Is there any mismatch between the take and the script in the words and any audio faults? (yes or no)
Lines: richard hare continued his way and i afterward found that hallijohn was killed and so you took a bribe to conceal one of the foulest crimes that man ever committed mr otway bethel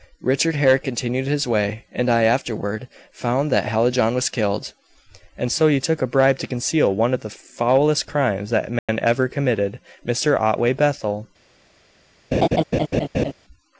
yes